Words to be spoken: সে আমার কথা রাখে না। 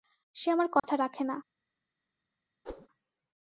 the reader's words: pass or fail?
pass